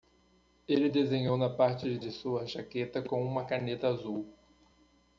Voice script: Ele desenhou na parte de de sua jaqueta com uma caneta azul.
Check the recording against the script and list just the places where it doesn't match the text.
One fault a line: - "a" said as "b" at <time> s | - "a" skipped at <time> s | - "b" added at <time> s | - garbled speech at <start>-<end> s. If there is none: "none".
none